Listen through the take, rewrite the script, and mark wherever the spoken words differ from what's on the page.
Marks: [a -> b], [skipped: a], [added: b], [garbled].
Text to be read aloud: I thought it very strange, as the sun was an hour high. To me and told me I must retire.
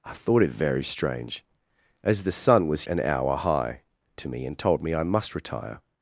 I thought it very strange, as the sun was an hour high. To me and told me I must retire.